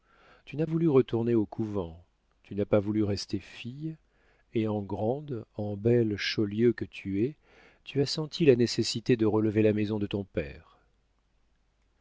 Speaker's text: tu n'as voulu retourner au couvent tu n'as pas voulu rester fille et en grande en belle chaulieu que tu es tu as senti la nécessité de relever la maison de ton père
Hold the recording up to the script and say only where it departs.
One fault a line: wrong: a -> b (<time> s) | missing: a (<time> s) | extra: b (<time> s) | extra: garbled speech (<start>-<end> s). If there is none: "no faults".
no faults